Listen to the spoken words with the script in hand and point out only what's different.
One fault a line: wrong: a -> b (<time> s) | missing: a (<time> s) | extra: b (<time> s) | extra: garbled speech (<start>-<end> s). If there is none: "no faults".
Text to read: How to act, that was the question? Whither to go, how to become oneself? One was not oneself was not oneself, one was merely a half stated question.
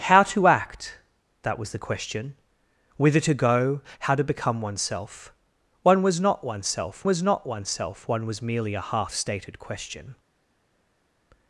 no faults